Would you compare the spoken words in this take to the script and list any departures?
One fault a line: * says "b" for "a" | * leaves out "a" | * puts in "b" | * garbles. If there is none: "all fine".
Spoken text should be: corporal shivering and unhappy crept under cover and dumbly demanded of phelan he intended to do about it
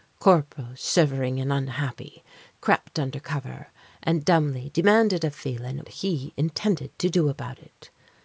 all fine